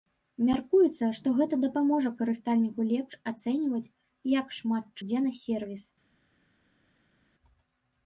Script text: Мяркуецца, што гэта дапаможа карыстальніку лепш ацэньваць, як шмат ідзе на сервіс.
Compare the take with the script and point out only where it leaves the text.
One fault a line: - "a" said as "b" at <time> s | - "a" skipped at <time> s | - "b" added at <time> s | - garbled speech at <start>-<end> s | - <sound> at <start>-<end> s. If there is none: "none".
none